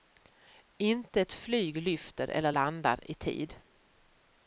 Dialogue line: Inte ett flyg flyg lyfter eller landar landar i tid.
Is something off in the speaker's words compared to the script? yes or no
yes